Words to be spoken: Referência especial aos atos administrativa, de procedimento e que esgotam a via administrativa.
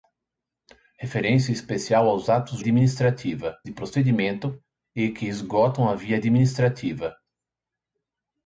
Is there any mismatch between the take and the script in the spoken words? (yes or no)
no